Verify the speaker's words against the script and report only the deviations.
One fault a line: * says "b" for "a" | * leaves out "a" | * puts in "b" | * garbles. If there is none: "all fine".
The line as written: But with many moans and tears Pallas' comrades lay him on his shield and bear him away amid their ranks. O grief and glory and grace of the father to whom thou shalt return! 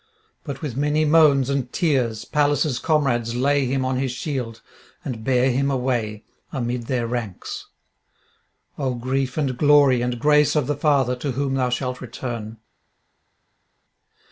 all fine